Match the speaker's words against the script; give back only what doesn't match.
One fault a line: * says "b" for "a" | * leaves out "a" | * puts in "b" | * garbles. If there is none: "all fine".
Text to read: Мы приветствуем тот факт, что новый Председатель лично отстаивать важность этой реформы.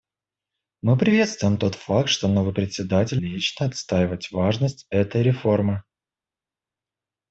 all fine